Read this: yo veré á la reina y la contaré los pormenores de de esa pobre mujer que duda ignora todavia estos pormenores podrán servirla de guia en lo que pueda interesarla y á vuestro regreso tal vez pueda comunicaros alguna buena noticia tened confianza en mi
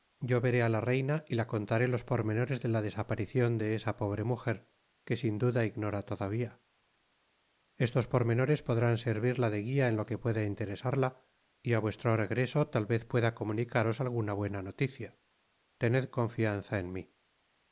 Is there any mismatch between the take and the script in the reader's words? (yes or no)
yes